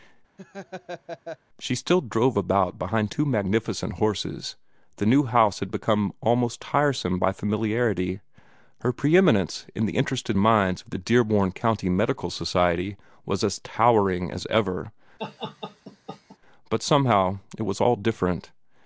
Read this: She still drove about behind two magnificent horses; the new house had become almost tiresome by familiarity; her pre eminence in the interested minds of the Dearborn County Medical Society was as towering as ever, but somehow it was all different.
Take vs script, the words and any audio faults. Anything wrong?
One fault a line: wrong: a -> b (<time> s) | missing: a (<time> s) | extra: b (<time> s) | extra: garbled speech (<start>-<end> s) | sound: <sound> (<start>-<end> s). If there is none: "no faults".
sound: laugh (0.4-1.4 s)
sound: laugh (15.2-16.4 s)